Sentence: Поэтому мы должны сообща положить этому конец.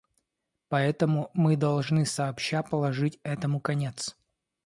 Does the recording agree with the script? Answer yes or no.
yes